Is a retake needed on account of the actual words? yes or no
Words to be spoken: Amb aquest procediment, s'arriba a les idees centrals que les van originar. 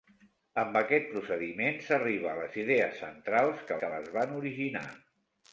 yes